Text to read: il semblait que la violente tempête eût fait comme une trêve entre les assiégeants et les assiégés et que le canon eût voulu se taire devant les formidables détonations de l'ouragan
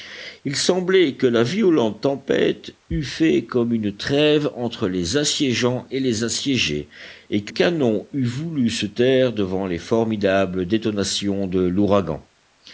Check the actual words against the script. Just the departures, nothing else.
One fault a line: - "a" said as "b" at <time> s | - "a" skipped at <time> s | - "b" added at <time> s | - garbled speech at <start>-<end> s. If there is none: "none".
- "le" skipped at 7.5 s